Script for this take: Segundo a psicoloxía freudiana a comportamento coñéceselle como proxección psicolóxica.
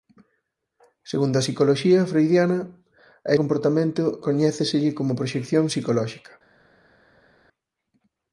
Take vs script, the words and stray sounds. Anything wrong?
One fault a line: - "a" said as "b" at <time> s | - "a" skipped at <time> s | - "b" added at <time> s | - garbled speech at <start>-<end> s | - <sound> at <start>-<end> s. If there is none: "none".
none